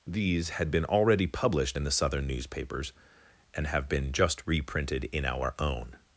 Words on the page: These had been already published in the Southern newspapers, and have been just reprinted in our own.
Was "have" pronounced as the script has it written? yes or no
yes